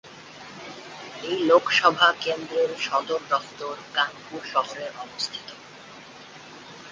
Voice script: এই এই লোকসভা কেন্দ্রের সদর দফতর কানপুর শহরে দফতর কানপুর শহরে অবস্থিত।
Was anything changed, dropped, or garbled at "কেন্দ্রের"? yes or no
no